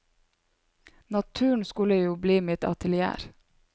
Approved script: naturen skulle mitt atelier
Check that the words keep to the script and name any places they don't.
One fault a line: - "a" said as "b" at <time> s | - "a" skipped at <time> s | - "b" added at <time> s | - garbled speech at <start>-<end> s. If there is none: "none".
- "jo bli" added at 1.9 s